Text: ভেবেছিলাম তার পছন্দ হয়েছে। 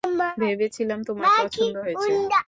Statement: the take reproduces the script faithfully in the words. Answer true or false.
false